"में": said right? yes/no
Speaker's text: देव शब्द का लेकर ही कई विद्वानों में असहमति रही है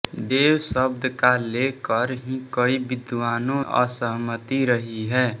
no